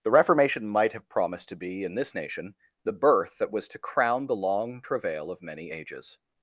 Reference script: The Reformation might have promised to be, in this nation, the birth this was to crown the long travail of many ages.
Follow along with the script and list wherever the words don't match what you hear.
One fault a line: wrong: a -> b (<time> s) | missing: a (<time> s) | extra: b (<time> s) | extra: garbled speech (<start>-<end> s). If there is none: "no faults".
wrong: this -> that (3.4 s)